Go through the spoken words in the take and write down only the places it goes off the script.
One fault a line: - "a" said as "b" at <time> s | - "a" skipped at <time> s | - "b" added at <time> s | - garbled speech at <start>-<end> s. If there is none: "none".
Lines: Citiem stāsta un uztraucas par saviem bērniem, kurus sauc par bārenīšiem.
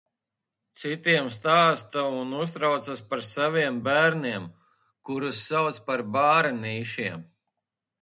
none